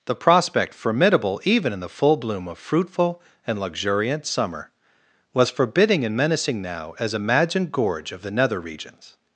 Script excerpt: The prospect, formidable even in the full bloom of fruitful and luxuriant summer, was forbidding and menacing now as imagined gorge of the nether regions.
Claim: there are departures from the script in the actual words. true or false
false